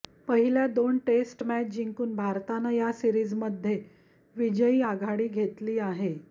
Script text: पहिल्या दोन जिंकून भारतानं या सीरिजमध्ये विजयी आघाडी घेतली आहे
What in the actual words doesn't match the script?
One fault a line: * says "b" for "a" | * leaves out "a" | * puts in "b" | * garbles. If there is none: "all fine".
* puts in "टेस्ट मॅच"